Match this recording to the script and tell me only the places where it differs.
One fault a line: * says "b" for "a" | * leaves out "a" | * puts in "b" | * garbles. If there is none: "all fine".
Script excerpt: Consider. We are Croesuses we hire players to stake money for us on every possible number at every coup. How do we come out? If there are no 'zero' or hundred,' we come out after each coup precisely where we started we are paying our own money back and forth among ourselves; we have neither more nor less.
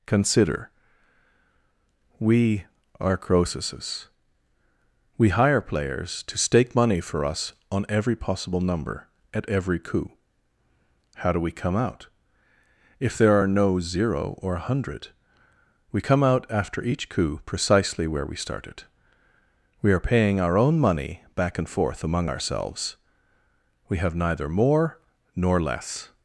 * puts in "a"